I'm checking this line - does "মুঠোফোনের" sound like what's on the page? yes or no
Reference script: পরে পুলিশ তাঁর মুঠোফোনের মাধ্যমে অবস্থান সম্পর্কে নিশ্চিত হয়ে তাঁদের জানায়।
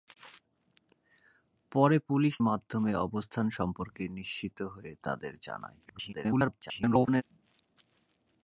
no